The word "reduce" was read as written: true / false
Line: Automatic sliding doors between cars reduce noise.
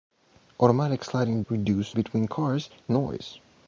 false